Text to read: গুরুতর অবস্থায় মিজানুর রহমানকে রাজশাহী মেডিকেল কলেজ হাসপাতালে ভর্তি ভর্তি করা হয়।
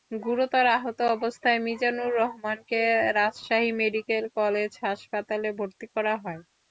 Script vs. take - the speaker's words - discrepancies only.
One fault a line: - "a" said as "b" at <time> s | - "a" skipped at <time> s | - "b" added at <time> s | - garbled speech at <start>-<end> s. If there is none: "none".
- "আহত" added at 0.7 s
- "ভর্তি" skipped at 5.9 s